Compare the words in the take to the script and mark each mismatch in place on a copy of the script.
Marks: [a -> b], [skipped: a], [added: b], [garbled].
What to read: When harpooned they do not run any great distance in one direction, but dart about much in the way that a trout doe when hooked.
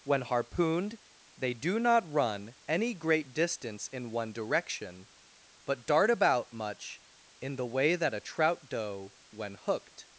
When harpooned they do not run any great distance in one direction, but dart about much in the way that a trout doe when hooked.